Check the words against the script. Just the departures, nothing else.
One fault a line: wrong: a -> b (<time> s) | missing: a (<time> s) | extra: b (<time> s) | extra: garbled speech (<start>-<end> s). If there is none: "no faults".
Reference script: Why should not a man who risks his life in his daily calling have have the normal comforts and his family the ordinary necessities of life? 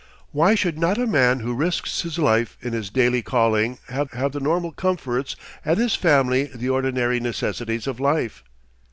no faults